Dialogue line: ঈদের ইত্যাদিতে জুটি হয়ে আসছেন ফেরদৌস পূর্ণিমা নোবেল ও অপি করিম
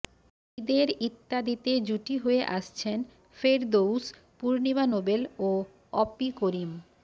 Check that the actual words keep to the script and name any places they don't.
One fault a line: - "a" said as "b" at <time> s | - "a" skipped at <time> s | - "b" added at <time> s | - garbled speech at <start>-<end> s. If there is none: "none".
none